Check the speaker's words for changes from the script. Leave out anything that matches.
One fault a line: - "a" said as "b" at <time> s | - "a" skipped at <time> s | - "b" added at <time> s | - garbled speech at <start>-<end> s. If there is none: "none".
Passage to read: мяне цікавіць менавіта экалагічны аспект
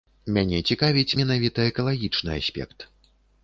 none